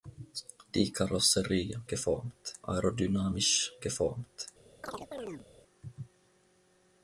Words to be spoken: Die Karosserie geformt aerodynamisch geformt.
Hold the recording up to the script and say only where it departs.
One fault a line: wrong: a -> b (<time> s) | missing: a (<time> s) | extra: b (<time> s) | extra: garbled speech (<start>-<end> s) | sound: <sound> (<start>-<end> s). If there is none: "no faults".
sound: chirp (4.8-5.5 s)